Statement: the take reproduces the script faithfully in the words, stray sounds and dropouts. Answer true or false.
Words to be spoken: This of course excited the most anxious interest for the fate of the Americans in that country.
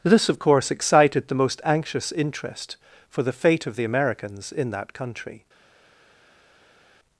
true